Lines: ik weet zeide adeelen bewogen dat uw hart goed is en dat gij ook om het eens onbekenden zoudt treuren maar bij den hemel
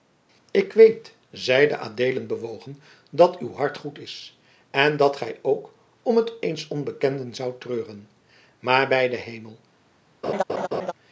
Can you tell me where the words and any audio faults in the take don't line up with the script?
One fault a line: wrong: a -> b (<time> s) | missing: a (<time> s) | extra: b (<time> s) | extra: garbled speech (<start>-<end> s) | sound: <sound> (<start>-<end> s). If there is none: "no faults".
sound: laugh (10.2-10.9 s)